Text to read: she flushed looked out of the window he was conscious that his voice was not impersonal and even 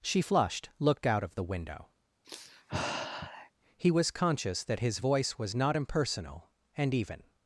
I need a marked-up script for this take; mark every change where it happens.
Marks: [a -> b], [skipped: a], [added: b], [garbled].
she flushed looked out of the window he was conscious that his voice was not impersonal and even